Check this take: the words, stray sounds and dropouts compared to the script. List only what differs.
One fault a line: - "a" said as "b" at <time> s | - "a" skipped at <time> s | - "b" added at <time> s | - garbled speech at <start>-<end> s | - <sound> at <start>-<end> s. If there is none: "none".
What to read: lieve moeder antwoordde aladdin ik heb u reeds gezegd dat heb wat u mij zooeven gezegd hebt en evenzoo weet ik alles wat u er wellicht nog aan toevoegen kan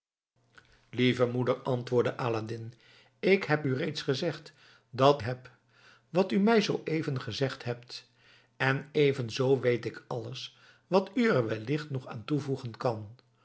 none